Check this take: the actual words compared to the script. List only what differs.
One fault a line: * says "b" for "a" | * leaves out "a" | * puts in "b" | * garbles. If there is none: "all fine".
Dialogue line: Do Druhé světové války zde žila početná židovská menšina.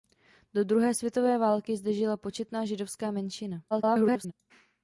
* garbles